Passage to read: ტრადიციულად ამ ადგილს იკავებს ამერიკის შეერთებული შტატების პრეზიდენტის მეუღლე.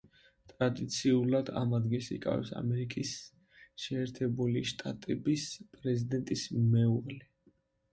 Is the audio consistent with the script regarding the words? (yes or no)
yes